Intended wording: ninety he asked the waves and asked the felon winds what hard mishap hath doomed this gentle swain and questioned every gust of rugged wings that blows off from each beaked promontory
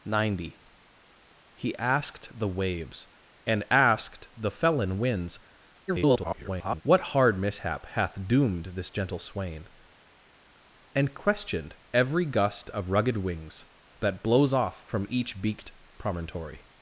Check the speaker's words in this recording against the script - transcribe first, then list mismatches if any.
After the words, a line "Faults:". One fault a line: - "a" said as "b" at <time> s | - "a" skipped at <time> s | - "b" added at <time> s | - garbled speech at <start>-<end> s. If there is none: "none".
ninety he asked the waves and asked the felon winds [garbled] what hard mishap hath doomed this gentle swain and questioned every gust of rugged wings that blows off from each beaked promontory
Faults:
- garbled speech at 5.9-6.8 s